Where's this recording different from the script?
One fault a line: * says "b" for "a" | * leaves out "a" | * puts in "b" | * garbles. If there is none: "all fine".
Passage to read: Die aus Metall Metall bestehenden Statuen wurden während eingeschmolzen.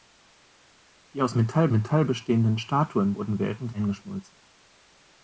all fine